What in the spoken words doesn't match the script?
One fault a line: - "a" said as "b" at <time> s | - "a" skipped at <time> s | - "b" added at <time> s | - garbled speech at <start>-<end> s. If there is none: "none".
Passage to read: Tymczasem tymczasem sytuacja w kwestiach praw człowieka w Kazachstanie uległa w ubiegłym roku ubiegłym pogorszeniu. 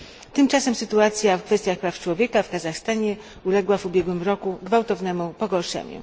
- "tymczasem" skipped at 0.8 s
- "ubiegłym" said as "gwałtownemu" at 4.6 s